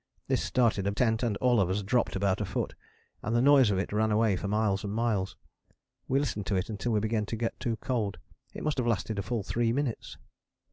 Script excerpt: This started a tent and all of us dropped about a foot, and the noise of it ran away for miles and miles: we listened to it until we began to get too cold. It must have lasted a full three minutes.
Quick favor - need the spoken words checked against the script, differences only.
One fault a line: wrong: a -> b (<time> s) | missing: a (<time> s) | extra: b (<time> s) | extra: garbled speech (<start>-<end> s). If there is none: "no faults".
no faults